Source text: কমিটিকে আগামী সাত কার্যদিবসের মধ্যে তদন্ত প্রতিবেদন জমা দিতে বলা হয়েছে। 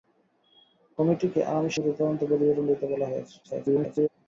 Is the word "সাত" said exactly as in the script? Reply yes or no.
no